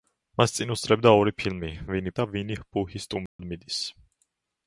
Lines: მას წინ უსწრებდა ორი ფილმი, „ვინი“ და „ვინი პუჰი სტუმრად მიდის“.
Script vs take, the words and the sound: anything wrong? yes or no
yes